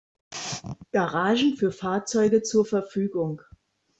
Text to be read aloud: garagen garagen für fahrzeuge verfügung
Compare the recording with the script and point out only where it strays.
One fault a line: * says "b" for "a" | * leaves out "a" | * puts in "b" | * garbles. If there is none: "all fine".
* leaves out "garagen"
* puts in "zur"